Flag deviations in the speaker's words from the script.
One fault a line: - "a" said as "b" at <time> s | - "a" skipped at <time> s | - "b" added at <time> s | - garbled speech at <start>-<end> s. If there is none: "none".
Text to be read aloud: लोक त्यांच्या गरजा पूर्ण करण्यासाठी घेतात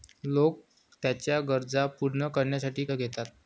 none